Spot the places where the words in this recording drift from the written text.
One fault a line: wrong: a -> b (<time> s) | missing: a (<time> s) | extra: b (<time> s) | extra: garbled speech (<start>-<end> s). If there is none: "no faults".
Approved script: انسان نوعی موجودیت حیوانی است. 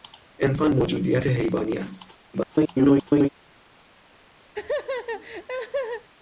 missing: نوعی (0.7 s)
extra: garbled speech (2.3-3.3 s)